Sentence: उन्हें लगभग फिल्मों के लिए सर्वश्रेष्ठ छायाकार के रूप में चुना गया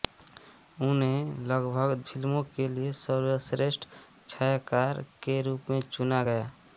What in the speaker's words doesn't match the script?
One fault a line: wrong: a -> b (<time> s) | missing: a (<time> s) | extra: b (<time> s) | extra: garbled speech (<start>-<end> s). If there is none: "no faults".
no faults